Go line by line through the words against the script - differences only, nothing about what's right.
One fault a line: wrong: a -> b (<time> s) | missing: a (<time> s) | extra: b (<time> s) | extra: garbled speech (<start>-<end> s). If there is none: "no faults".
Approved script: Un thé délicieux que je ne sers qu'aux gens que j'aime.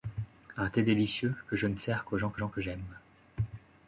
extra: gens que (2.4 s)